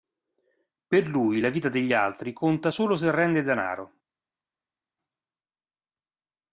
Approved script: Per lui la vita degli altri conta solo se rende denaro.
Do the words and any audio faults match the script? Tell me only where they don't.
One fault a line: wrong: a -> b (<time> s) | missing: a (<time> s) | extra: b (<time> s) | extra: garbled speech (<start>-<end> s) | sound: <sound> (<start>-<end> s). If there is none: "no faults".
no faults